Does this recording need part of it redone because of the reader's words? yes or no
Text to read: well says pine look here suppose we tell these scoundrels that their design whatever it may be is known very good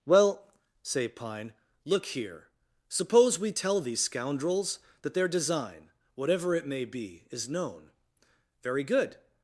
yes